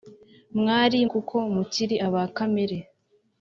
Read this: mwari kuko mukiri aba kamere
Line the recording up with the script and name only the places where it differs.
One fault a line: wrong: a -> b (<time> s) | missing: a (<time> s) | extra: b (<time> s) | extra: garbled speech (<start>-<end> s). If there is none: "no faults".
no faults